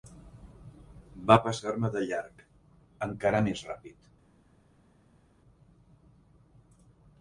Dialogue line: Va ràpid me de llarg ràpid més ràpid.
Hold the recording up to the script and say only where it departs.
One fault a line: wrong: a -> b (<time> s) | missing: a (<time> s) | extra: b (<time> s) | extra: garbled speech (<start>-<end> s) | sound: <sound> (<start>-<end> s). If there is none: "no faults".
wrong: ràpid -> passar (1.5 s)
wrong: ràpid -> encara (3.1 s)